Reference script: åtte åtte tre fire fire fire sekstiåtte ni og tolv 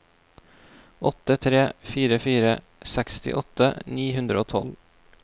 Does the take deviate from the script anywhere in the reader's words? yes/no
yes